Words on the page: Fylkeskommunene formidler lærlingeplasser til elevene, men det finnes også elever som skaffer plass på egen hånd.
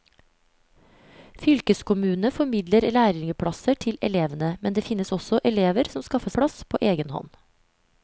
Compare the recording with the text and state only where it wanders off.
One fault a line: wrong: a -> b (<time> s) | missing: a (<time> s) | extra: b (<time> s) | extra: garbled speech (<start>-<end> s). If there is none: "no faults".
no faults